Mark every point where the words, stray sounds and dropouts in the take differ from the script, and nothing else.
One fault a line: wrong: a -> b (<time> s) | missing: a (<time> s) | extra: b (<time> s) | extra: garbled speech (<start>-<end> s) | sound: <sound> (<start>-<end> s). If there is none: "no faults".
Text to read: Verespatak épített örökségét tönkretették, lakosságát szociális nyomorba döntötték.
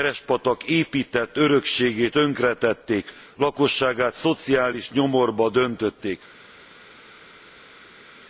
no faults